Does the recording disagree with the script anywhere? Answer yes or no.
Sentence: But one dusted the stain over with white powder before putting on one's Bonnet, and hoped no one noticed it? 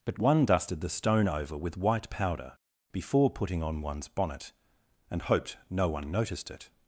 yes